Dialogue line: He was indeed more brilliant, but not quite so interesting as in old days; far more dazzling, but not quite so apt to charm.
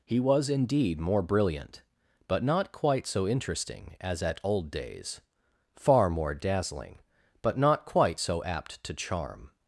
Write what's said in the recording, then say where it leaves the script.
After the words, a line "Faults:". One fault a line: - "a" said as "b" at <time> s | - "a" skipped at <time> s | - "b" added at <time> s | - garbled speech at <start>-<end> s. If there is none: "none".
He was indeed more brilliant, but not quite so interesting as at old days; far more dazzling, but not quite so apt to charm.
Faults:
- "in" said as "at" at 4.2 s